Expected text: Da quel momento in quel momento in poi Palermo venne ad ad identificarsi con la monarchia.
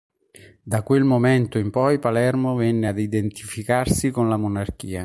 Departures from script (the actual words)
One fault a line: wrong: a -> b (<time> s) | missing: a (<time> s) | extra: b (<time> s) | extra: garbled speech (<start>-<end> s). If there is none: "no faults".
missing: quel momento in (1.7 s)
missing: ad (3.0 s)